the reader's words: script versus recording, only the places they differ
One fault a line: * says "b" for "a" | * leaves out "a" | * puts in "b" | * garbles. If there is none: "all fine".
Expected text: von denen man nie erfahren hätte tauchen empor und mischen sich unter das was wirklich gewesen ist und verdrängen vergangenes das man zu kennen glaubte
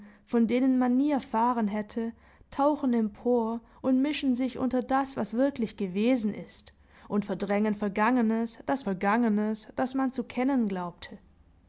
* puts in "vergangenes das"